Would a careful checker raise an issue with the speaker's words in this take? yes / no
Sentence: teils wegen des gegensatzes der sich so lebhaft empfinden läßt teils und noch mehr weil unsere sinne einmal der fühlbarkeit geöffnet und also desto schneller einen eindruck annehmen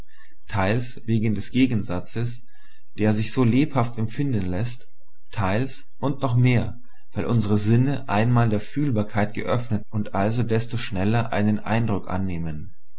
no